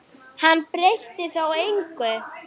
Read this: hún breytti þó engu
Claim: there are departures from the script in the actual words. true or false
true